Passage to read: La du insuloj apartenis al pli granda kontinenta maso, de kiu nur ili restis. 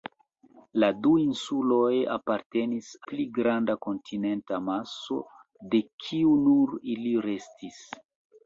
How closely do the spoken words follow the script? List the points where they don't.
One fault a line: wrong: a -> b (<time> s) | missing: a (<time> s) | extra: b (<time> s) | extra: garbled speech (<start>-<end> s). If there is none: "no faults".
missing: al (2.9 s)